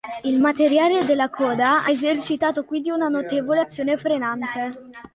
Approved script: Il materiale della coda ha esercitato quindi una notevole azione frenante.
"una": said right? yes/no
yes